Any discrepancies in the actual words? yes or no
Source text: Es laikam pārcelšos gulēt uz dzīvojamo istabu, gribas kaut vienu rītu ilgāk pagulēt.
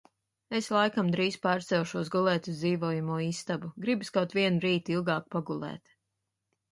yes